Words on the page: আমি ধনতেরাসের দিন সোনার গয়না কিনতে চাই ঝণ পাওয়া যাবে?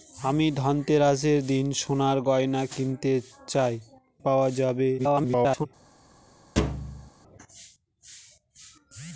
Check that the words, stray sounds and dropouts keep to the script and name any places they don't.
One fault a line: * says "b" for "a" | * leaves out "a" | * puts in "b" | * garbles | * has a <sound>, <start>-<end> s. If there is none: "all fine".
* leaves out "ঝণ"
* garbles
* has a thud, 6.6-7.1 s